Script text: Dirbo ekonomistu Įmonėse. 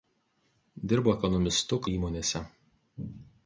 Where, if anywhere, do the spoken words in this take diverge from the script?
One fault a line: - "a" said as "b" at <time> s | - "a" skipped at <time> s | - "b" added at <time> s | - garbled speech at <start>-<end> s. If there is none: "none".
none